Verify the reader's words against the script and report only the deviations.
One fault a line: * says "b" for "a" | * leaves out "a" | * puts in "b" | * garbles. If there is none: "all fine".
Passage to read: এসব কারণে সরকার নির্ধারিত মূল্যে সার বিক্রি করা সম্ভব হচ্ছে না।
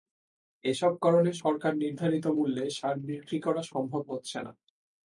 all fine